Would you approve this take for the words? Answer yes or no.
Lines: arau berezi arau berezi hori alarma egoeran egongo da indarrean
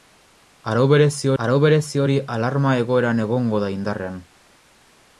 yes